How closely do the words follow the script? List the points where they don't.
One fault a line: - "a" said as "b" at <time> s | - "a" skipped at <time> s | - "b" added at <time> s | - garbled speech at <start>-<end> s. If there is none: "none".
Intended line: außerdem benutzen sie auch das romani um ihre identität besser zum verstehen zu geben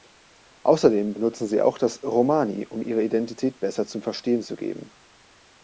none